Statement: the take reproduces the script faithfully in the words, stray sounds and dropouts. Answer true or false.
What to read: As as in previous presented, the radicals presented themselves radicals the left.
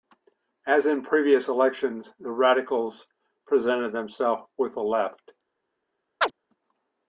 false